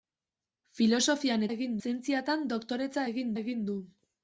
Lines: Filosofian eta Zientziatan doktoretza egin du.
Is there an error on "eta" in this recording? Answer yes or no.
yes